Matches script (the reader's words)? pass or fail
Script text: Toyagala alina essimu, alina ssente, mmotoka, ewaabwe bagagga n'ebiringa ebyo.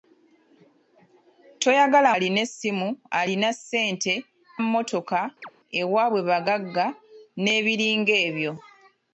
pass